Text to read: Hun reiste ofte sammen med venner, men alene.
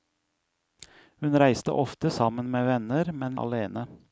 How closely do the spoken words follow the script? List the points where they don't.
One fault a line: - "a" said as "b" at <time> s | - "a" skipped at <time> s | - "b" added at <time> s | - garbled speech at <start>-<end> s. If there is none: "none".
none